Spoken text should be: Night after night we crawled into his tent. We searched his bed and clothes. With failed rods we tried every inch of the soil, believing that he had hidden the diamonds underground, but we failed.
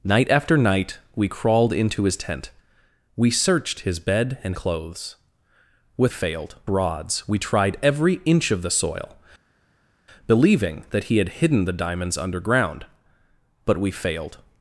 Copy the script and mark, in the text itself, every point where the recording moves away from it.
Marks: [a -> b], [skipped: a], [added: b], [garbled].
Night after night we crawled into his tent. We searched his bed and clothes. With failed rods we tried every inch of the soil, believing that he had hidden the diamonds underground, but we failed.